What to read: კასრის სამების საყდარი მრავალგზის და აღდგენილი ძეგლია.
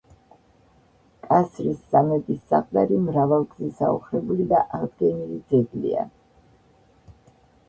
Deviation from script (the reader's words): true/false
true